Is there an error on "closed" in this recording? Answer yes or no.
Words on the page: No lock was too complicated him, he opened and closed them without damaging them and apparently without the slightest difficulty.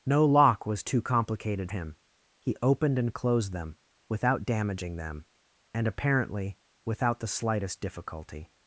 no